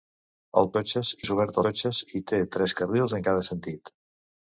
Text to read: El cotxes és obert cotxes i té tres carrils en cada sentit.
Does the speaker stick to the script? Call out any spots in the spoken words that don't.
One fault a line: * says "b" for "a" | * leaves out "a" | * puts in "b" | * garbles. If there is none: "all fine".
all fine